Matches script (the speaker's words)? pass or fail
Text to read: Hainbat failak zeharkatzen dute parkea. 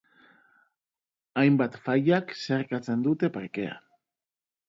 pass